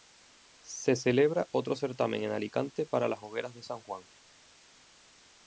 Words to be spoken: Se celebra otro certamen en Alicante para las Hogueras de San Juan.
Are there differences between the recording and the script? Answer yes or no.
no